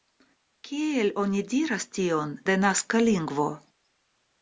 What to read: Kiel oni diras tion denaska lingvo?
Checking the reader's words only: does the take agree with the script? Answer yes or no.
yes